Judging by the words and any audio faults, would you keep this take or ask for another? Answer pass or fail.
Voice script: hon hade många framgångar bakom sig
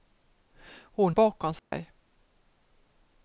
fail